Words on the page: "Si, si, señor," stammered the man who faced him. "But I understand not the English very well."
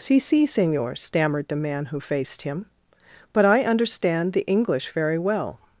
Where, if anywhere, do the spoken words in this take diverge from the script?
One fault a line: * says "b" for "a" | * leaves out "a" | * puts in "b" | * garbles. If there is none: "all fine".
* leaves out "not"